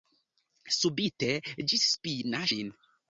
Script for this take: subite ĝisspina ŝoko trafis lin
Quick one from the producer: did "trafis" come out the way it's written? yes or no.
no